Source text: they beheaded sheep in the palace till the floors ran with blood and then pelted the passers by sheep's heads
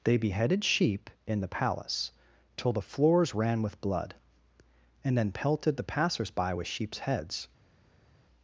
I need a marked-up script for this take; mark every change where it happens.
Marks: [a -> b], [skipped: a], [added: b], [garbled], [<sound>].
they beheaded sheep in the palace till the floors ran with blood and then pelted the passers by [added: with] sheep's heads